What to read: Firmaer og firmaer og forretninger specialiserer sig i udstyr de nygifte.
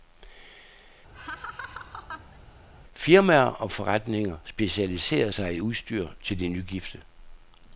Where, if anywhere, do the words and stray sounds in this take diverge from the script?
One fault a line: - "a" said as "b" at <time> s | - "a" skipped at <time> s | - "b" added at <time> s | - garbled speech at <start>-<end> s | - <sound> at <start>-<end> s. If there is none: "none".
- laugh at 1.1-2.4 s
- "firmaer og" skipped at 3.7 s
- "til" added at 6.2 s